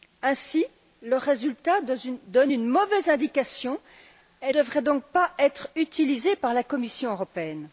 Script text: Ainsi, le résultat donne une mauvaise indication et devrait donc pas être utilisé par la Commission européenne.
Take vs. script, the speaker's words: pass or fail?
pass